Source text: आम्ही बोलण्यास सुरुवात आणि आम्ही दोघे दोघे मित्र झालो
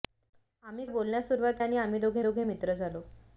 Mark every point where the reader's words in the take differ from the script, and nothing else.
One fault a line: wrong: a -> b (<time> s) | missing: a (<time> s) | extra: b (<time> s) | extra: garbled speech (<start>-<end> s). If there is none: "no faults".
no faults